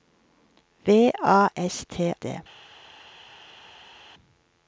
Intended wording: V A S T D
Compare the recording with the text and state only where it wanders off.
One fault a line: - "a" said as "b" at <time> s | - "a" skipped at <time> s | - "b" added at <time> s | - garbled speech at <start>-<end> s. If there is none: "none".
none